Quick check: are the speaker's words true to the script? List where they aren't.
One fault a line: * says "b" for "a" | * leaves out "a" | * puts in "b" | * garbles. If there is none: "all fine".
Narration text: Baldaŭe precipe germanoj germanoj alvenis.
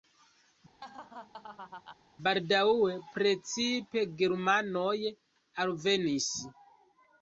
* leaves out "germanoj"